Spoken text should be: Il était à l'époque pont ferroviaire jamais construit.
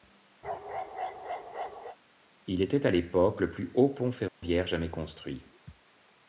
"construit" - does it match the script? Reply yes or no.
yes